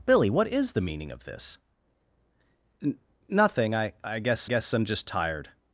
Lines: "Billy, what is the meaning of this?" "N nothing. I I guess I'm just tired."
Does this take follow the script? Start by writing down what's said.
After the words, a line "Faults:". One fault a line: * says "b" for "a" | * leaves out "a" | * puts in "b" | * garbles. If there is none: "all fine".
"Billy, what is the meaning of this?" "N nothing. I I guess guess I'm just tired."
Faults:
* puts in "guess"